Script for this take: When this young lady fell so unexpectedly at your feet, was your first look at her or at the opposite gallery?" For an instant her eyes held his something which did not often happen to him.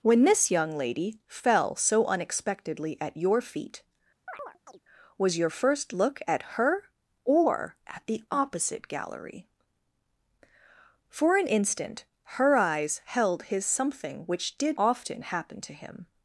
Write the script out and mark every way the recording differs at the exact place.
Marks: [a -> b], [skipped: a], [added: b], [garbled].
When this young lady fell so unexpectedly at your feet, was your first look at her or at the opposite gallery?" For an instant her eyes held his something which did [skipped: not] often happen to him.